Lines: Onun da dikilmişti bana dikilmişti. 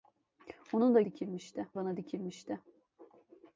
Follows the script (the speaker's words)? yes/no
yes